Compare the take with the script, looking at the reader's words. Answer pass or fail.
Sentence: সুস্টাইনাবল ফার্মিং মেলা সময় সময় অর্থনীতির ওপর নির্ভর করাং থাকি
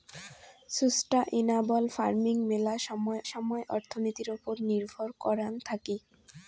pass